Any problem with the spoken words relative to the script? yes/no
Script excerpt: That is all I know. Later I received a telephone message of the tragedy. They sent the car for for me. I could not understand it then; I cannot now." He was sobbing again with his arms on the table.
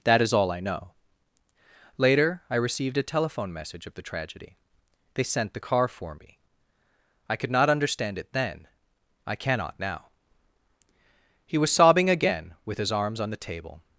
yes